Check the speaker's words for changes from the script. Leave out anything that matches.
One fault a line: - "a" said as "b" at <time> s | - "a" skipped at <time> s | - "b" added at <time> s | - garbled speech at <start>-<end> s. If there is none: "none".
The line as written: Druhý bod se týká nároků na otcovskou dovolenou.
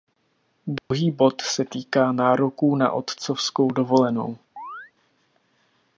none